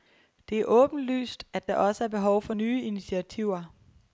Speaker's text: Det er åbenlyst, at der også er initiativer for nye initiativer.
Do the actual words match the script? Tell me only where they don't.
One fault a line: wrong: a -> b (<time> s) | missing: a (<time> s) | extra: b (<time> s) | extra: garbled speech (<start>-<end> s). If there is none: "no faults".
wrong: initiativer -> behov (2.1 s)